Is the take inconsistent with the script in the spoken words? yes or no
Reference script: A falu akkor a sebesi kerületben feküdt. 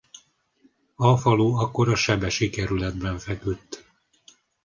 no